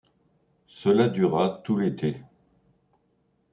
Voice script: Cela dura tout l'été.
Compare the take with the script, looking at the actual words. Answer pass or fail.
pass